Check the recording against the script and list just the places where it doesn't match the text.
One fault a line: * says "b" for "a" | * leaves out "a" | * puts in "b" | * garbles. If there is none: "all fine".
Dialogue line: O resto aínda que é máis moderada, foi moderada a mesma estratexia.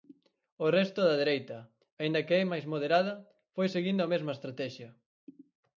* puts in "da dereita"
* says "seguindo" for "moderada"